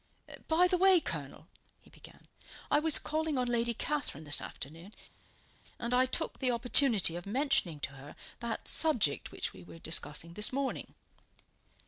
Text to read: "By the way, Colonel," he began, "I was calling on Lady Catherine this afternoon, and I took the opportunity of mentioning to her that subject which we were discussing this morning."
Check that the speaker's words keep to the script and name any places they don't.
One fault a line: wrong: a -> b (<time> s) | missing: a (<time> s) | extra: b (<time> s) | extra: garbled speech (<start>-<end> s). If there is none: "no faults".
no faults